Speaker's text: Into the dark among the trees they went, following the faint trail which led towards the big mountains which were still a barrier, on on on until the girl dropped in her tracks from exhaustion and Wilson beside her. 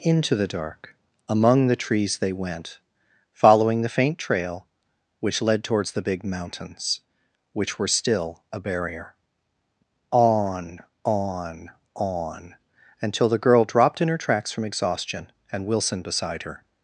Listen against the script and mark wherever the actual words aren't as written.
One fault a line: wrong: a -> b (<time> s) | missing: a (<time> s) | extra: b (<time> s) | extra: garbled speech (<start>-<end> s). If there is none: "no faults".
no faults